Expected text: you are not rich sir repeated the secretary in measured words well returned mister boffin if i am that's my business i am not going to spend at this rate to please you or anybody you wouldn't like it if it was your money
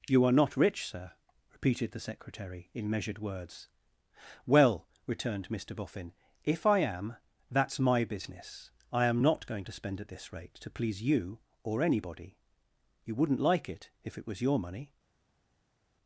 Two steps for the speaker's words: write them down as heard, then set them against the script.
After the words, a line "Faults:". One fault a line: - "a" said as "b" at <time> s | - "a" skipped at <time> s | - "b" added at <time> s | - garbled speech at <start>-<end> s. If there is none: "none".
you are not rich sir repeated the secretary in measured words well returned mister boffin if i am that's my business i am not going to spend at this rate to please you or anybody you wouldn't like it if it was your money
Faults:
none